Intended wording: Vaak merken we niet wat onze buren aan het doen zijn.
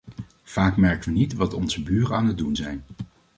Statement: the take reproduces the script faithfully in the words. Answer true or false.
true